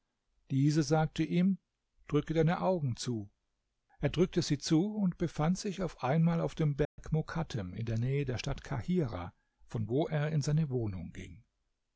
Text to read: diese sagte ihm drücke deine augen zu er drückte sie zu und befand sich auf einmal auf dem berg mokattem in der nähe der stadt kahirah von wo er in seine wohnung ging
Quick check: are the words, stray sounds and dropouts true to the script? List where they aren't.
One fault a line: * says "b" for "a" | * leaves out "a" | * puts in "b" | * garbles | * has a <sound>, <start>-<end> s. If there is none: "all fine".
* has a dropout, 6.8-7.0 s